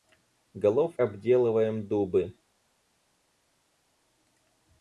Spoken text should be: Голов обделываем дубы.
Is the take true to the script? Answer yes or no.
yes